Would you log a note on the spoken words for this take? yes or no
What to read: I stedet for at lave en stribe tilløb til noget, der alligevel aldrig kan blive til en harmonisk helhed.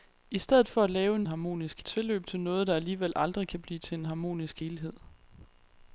yes